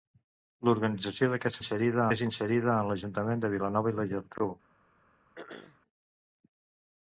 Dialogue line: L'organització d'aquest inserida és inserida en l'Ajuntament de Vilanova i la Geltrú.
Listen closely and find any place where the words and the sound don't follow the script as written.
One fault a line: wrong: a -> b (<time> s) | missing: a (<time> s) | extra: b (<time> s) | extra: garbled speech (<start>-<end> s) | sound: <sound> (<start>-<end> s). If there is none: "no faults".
sound: throat clearing (5.4-5.8 s)